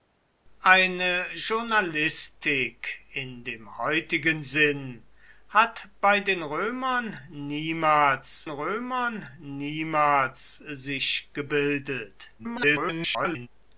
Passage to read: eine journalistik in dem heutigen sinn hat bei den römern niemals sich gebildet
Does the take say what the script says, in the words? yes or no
no